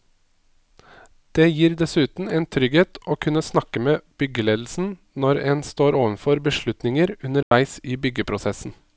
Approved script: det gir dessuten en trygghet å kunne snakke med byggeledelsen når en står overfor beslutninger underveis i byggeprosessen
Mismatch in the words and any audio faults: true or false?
true